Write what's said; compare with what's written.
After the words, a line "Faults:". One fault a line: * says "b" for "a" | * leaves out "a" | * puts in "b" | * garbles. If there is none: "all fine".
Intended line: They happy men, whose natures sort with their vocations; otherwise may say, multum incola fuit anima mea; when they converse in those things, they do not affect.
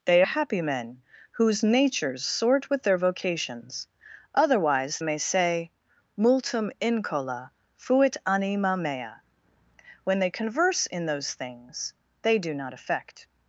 They happy men, whose natures sort with their vocations; otherwise may say, multum incola fuit anima mea; when they converse in those things, they do not affect.
Faults:
all fine